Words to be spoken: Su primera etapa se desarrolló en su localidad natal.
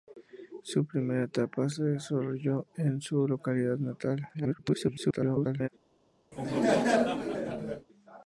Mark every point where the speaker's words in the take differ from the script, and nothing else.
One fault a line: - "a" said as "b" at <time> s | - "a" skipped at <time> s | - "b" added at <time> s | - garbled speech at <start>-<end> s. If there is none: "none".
- garbled speech at 4.3-5.7 s